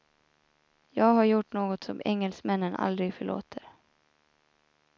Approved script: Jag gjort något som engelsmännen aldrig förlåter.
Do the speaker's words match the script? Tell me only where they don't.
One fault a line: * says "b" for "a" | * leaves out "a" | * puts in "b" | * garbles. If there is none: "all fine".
* puts in "har"